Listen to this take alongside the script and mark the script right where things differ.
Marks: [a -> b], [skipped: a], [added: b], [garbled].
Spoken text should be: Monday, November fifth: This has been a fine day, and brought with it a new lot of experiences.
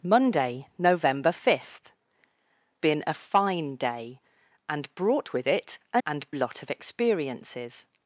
Monday, November fifth: [skipped: This has] been a fine day, and brought with it a [new -> and] lot of experiences.